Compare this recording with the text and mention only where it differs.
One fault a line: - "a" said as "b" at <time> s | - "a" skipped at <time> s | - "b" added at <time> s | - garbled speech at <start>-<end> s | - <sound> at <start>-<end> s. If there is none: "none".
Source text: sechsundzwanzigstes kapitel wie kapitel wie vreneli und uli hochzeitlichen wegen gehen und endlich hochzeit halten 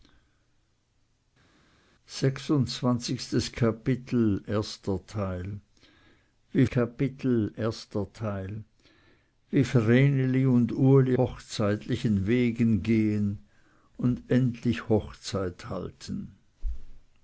none